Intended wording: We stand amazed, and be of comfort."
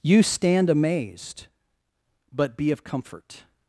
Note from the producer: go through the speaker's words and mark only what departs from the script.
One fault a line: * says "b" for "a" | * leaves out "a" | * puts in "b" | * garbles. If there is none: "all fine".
* says "You" for "We"
* says "but" for "and"